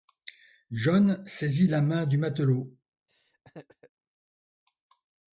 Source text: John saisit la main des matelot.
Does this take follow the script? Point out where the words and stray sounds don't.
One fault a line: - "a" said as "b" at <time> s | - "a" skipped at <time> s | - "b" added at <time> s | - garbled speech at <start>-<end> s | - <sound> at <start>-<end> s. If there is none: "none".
- "des" said as "du" at 2.1 s
- laugh at 3.1-3.9 s